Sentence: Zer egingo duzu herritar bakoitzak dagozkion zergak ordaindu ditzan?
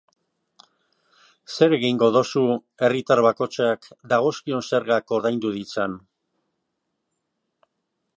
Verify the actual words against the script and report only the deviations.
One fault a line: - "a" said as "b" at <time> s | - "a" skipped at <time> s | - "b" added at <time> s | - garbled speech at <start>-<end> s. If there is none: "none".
none